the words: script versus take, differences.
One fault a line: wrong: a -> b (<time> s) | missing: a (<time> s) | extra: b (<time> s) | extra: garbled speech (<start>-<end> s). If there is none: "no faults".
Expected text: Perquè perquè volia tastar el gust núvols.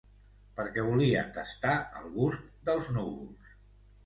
missing: perquè (0.8 s)
extra: dels (2.7 s)